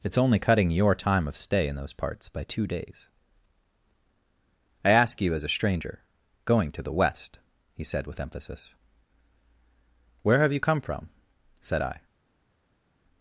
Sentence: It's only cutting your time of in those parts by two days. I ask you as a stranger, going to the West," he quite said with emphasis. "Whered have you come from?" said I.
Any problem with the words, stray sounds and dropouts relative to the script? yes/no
yes